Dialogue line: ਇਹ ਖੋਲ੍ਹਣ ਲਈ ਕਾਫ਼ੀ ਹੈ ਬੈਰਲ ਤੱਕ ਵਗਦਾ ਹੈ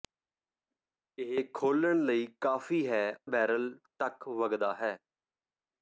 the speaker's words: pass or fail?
pass